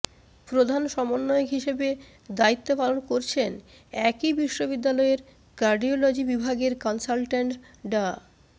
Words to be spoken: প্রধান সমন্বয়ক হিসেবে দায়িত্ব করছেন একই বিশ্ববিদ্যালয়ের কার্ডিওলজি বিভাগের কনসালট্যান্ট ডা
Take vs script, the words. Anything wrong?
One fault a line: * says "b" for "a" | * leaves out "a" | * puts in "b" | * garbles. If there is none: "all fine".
* puts in "পালন"